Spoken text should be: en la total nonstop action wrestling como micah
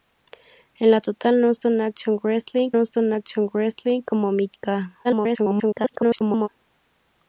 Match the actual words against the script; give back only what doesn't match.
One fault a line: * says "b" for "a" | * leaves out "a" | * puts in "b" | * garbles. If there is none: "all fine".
* puts in "nonstop action wrestling"
* garbles